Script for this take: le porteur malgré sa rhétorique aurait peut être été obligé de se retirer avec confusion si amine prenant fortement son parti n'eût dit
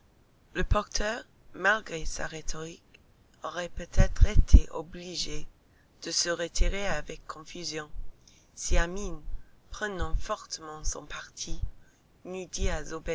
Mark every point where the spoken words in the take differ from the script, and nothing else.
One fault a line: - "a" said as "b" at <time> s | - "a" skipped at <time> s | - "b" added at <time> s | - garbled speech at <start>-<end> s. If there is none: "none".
none